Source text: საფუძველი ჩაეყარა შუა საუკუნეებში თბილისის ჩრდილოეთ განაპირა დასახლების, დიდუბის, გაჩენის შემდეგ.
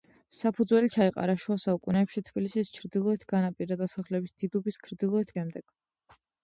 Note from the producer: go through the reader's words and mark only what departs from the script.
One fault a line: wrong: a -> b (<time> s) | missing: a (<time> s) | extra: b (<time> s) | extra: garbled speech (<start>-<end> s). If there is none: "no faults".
wrong: გაჩენის -> ჩრდილოეთ (4.8 s)